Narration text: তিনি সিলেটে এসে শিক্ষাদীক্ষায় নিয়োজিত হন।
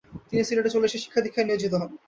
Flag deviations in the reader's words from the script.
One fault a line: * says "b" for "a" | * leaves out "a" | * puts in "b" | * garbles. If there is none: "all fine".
* puts in "চলে"